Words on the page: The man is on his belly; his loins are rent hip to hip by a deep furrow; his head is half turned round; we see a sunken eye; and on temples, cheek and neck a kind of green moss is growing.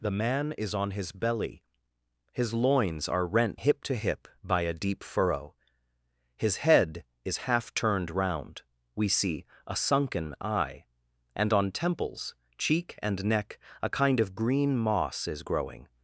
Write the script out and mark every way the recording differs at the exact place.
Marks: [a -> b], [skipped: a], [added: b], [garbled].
The man is on his belly; his loins are rent hip to hip by a deep furrow; his head is half turned round; we see a sunken eye; and on temples, cheek and neck a kind of green moss is growing.